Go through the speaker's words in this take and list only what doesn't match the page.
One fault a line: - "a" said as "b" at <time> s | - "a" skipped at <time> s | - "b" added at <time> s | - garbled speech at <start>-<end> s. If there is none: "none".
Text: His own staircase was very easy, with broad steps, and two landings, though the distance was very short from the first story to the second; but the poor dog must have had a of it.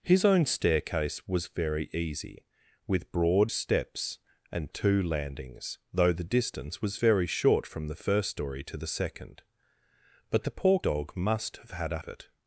none